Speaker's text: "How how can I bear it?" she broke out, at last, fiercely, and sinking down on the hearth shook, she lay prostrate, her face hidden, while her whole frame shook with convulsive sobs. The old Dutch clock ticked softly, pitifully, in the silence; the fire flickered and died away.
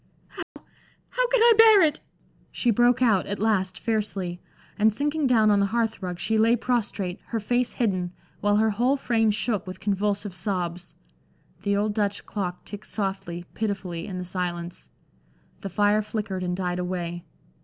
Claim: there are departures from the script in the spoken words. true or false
true